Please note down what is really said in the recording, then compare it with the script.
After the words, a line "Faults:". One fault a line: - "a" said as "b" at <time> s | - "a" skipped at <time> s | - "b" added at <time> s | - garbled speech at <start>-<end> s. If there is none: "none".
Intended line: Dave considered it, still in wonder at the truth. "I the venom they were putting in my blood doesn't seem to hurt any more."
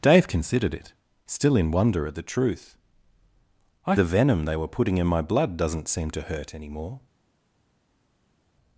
Dave considered it, still in wonder at the truth. "I the venom they were putting in my blood doesn't seem to hurt any more."
Faults:
none